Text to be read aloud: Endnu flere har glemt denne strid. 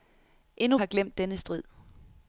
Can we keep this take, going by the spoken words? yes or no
no